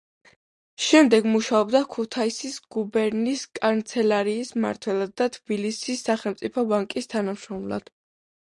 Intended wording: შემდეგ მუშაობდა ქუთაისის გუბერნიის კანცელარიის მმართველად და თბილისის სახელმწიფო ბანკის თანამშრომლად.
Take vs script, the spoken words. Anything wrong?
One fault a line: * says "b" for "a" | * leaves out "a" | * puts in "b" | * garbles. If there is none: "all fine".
all fine